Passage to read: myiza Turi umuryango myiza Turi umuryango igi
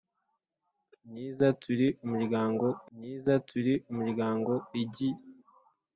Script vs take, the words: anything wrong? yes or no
no